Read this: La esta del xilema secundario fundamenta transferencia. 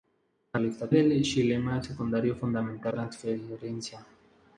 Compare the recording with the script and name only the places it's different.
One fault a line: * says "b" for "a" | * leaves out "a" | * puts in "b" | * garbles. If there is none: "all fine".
all fine